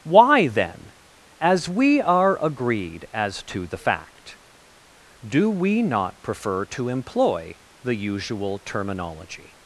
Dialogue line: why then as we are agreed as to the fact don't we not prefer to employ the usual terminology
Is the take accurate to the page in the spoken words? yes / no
no